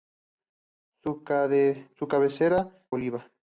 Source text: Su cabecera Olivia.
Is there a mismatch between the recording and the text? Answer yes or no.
no